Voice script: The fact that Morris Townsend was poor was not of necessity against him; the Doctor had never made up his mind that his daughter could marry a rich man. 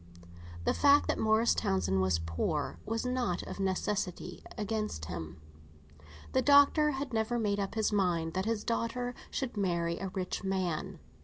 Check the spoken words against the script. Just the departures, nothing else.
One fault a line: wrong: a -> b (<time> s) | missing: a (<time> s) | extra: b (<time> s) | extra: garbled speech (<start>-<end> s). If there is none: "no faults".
wrong: could -> should (9.3 s)